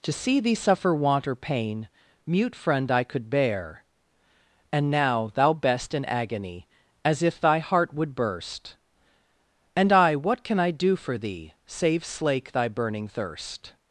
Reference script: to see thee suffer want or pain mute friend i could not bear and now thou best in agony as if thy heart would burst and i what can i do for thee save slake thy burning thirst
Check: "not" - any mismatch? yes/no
yes